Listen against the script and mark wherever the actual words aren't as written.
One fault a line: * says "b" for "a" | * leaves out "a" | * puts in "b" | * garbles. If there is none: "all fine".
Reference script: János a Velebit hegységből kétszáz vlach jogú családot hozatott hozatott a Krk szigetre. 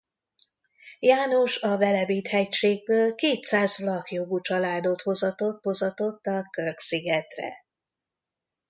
all fine